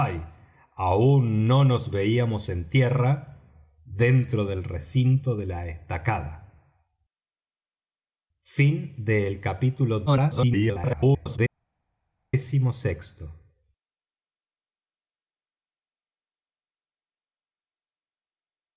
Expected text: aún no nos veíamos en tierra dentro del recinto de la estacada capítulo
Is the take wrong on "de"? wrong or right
right